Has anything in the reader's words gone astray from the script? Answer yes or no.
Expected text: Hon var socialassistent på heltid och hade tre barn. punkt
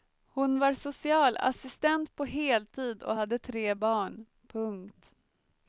no